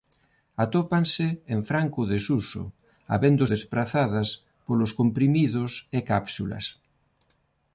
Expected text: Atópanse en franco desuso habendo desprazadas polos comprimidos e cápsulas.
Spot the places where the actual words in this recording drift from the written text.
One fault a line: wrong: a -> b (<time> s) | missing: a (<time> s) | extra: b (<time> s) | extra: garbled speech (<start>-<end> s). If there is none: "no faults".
no faults